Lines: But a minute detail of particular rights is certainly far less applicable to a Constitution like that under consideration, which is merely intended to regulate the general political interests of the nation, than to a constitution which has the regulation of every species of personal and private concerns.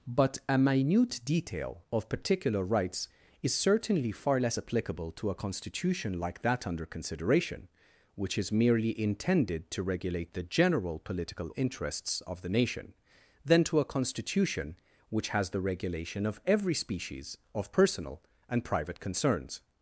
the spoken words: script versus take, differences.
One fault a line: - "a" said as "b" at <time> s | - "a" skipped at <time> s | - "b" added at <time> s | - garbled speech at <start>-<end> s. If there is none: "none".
none